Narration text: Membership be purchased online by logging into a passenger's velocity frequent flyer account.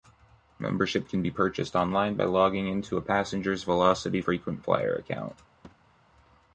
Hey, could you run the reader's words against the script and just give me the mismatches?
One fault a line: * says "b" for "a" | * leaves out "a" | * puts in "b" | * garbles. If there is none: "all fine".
* puts in "can"